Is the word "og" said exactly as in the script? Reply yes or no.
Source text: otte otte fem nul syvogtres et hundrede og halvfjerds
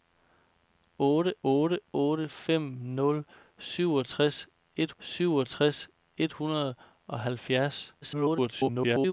yes